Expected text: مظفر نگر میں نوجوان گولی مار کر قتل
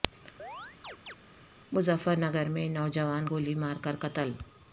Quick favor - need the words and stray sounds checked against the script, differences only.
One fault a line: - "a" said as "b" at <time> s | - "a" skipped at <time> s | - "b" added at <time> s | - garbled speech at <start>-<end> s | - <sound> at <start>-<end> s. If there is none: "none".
- chirp at 0.4-1.2 s